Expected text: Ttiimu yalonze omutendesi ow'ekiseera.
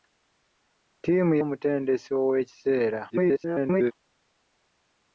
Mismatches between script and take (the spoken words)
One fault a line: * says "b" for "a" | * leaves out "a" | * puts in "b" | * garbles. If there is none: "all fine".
* leaves out "yalonze"
* garbles